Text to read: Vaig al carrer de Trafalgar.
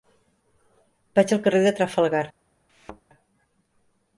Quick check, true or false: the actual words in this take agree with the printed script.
true